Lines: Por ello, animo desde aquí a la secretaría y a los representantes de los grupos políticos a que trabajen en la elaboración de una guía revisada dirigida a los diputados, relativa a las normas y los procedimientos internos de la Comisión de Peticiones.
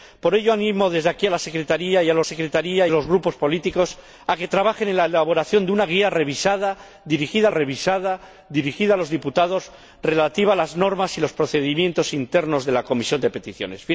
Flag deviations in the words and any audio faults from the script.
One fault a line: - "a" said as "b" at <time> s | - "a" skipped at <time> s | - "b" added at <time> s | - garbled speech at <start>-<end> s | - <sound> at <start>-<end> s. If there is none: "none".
- "representantes" said as "secretaría" at 2.2 s
- "revisada dirigida" added at 7.5 s